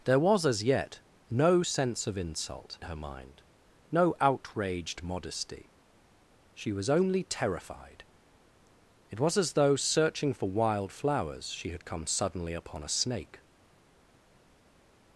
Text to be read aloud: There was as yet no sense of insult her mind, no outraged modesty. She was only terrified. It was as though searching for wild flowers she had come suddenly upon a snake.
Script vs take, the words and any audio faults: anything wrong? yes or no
no